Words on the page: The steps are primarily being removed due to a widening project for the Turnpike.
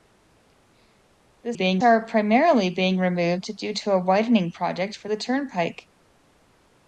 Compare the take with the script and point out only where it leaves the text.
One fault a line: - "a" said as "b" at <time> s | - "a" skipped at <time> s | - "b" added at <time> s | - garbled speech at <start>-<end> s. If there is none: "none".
- "steps" said as "being" at 1.5 s